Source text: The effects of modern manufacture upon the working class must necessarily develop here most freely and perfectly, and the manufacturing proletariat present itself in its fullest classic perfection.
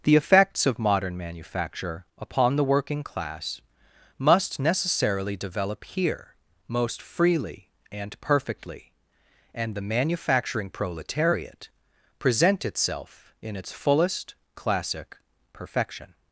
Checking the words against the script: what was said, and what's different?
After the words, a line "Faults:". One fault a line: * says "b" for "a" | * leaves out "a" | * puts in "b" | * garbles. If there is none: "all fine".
The effects of modern manufacture upon the working class must necessarily develop here most freely and perfectly, and the manufacturing proletariat present itself in its fullest classic perfection.
Faults:
all fine